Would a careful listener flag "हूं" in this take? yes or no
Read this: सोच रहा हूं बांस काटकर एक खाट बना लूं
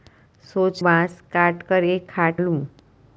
yes